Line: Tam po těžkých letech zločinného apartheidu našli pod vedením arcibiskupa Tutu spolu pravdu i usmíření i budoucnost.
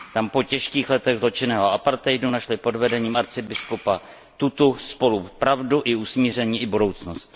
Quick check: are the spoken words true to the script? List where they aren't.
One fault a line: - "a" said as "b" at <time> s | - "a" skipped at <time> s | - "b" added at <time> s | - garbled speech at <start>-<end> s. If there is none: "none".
none